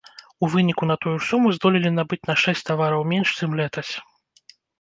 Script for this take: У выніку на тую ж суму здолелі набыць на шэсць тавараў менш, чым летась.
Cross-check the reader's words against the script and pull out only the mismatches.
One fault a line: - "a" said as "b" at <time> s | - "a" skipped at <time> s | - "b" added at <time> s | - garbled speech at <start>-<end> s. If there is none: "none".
none